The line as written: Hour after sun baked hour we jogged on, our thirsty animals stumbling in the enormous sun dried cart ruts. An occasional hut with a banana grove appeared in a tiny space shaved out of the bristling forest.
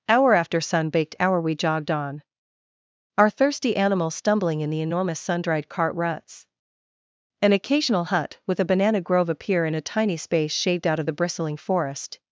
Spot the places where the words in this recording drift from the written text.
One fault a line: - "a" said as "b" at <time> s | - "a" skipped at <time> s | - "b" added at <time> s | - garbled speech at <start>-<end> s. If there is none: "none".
- "appeared" said as "appear" at 9.3 s